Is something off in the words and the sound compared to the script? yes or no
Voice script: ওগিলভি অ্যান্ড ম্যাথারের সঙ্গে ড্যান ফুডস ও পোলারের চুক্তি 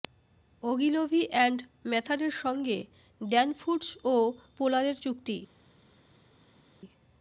no